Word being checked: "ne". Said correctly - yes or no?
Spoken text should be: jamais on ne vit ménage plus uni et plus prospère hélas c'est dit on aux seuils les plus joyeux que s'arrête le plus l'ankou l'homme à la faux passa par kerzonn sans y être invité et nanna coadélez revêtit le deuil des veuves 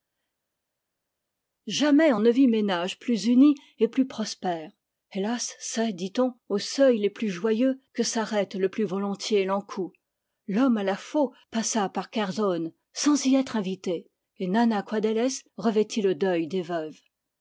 yes